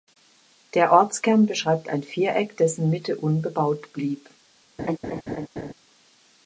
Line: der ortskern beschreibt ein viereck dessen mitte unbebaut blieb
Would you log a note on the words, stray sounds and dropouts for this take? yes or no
yes